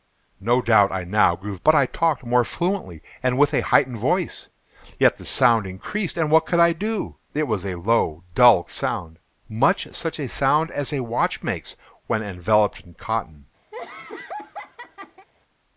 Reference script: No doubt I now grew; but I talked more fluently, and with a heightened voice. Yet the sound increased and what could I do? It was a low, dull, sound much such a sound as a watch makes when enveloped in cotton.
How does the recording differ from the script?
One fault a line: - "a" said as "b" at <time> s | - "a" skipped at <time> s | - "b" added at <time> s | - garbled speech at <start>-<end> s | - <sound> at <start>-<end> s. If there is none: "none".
- laugh at 13.7-15.3 s